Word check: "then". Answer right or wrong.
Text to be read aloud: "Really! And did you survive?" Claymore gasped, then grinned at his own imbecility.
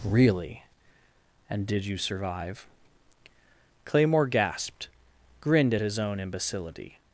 wrong